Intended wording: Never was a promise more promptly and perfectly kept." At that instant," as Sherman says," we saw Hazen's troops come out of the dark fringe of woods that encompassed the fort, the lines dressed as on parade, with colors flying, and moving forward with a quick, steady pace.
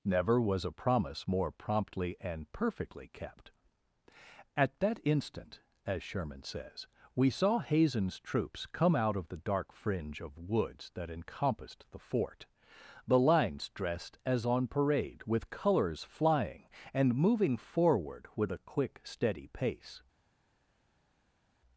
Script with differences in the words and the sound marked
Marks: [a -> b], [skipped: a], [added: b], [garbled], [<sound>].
Never was a promise more promptly and perfectly kept." At that instant," as Sherman says," we saw Hazen's troops come out of the dark fringe of woods that encompassed the fort, the lines dressed as on parade, with colors flying, and moving forward with a quick, steady pace.